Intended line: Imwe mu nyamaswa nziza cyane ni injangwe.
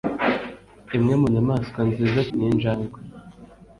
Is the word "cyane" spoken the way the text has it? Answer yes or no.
no